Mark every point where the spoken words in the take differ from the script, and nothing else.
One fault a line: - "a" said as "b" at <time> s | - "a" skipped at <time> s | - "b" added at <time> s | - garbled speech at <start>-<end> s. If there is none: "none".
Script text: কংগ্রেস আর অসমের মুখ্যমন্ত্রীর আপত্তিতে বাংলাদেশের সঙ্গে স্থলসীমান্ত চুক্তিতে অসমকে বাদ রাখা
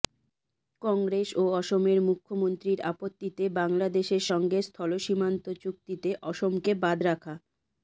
- "আর" said as "ও" at 1.4 s